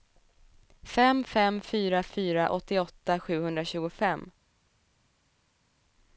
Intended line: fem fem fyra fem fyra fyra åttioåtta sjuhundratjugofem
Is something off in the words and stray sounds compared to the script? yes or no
yes